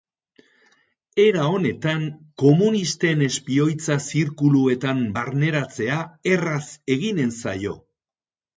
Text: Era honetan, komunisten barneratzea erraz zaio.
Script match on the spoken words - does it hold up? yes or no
no